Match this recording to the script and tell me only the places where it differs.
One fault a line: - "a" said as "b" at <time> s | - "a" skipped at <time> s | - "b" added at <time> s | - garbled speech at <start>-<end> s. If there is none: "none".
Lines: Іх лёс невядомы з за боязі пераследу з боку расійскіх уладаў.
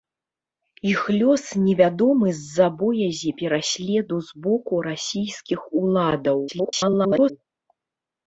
- garbled speech at 6.5-7.3 s